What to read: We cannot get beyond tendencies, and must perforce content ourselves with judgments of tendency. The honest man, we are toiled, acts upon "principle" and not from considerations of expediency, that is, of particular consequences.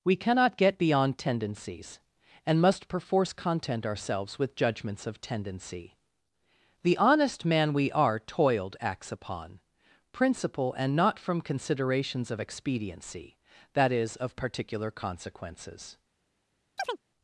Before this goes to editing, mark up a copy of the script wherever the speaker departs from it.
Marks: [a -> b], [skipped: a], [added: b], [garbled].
We cannot get beyond tendencies, and must perforce content ourselves with judgments of tendency. The honest man, we are toiled, acts upon "principle" and not from considerations of expediency, that is, of particular consequences.